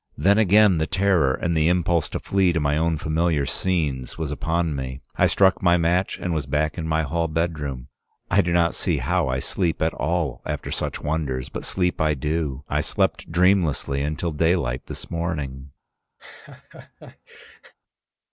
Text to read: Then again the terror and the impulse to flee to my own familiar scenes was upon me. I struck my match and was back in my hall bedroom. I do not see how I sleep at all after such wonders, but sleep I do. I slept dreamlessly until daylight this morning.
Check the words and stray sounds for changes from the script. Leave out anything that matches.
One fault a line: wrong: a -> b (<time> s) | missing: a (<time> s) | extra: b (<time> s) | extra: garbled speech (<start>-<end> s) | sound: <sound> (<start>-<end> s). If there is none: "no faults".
sound: laugh (16.2-17.7 s)